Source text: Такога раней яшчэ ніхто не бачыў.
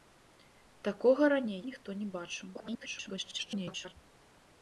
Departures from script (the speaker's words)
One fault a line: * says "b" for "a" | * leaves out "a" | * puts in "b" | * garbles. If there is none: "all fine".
* leaves out "яшчэ"
* garbles